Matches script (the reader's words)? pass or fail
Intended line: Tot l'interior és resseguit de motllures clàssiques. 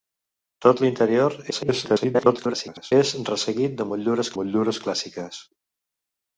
fail